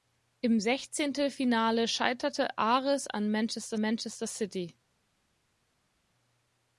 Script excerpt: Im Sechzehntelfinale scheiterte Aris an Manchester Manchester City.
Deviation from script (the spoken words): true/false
false